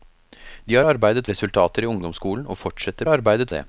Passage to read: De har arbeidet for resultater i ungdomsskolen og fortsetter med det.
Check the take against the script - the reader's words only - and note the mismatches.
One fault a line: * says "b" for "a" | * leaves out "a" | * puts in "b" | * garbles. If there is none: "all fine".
* leaves out "for"
* says "arbeidet" for "med"